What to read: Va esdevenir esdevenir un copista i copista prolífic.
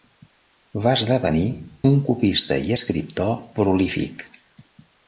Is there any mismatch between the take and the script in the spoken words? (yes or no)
yes